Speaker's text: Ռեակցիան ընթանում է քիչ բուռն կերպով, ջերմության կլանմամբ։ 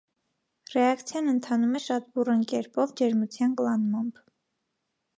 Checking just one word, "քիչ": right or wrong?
wrong